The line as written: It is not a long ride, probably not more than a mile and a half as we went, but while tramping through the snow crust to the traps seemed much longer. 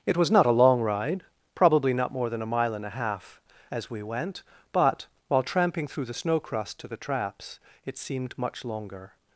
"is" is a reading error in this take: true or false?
true